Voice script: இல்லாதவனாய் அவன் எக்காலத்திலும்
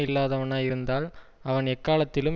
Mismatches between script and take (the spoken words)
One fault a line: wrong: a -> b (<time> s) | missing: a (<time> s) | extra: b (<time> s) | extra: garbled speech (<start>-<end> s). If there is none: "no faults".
extra: இருந்தால் (0.6 s)